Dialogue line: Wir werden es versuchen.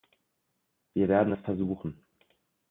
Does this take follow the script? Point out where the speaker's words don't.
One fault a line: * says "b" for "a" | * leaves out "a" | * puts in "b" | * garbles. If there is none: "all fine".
all fine